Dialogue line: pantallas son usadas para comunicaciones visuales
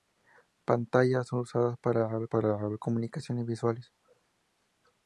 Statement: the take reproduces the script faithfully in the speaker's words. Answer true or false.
false